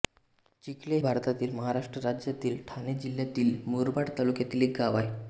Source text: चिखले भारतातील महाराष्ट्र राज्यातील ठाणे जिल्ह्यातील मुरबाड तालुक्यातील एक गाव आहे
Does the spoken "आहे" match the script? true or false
true